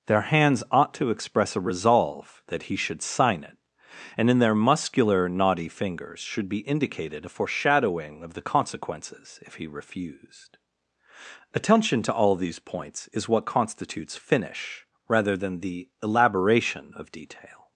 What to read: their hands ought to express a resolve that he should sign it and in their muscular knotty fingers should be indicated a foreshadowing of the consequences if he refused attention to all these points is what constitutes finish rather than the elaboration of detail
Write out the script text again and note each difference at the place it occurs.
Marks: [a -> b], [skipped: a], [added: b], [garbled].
their hands ought to express a resolve that he should sign it and in their muscular knotty fingers should be indicated a foreshadowing of the consequences if he refused attention to all these points is what constitutes finish rather than the elaboration of detail